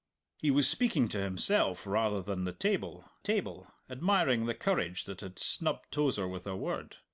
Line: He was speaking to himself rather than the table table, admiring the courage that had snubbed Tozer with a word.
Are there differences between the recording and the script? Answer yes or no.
no